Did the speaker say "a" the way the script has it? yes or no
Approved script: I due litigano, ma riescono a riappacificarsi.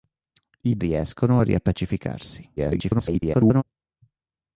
yes